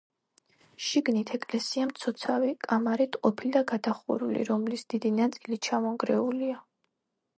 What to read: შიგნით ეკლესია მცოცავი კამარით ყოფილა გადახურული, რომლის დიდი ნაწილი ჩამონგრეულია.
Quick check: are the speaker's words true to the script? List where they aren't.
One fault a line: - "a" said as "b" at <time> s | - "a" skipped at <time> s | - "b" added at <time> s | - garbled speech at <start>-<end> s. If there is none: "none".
none